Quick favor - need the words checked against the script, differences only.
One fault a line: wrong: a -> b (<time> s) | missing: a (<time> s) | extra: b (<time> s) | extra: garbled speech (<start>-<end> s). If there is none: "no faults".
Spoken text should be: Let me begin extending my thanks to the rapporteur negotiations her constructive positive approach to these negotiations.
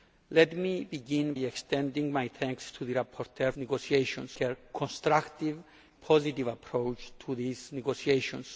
no faults